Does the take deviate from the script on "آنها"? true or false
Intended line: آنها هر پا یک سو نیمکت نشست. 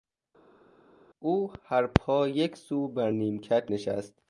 true